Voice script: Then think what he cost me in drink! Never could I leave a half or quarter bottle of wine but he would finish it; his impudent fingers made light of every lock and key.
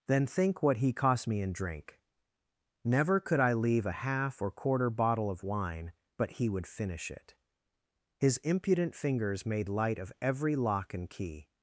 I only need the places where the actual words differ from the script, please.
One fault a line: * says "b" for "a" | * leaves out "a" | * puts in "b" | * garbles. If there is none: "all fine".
all fine